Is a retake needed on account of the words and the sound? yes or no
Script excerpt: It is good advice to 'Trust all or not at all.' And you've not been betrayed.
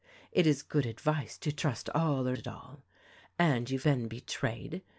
yes